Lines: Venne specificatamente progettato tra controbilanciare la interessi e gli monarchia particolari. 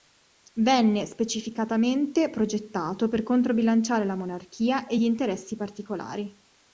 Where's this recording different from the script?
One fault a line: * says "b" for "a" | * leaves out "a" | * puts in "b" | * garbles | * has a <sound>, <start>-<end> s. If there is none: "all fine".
* says "per" for "tra"
* says "monarchia" for "interessi"
* says "interessi" for "monarchia"